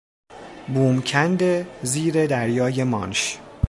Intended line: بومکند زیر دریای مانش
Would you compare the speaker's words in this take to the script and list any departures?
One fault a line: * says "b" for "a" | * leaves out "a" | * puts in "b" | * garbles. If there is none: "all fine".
all fine